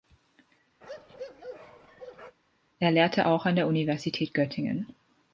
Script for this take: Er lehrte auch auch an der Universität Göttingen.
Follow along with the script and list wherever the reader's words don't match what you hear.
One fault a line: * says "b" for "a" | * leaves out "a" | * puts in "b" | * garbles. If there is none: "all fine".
* leaves out "auch"